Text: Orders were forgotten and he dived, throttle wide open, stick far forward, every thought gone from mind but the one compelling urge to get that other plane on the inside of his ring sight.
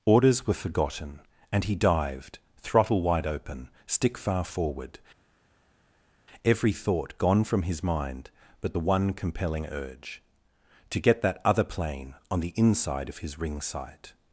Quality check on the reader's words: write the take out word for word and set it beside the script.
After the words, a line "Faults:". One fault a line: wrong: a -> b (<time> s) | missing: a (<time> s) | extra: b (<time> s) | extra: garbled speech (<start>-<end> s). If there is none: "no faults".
Orders were forgotten and he dived, throttle wide open, stick far forward, every thought gone from his mind but the one compelling urge to get that other plane on the inside of his ring sight.
Faults:
extra: his (7.6 s)